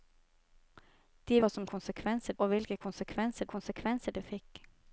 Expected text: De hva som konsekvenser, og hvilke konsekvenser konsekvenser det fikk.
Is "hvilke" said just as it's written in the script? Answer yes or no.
yes